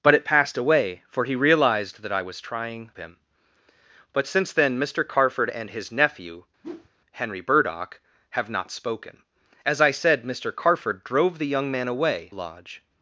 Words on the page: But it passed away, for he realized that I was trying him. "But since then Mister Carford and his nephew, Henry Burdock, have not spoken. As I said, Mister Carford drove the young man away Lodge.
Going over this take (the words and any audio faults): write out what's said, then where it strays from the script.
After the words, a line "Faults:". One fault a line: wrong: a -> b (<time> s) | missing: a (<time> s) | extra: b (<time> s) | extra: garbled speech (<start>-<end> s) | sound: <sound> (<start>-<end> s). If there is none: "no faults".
But it passed away, for he realized that I was trying him. "But since then Mister Carford and his nephew, Henry Burdock, have not spoken. As I said, Mister Carford drove the young man away Lodge.
Faults:
sound: whoosh (6.6-6.9 s)